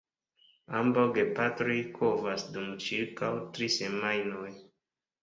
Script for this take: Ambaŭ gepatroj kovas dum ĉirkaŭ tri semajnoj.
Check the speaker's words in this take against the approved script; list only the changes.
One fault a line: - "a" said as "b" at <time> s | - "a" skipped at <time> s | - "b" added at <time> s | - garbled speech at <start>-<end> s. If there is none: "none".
none